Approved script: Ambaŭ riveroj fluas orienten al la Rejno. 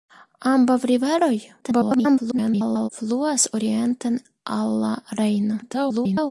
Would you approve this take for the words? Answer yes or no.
no